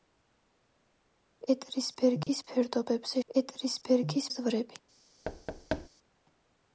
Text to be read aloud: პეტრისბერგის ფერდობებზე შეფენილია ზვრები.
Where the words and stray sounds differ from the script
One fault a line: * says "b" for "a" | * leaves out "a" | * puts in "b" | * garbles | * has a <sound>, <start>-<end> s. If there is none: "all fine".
* has a dropout, 2.2-2.3 s
* says "პეტრისბერგის" for "შეფენილია"
* has a thud, 5.2-5.9 s